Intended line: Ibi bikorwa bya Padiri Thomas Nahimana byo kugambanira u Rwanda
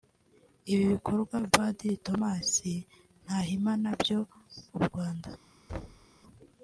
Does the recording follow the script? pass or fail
fail